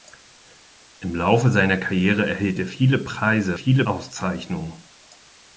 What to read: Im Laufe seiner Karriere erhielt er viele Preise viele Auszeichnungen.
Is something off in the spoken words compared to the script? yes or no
no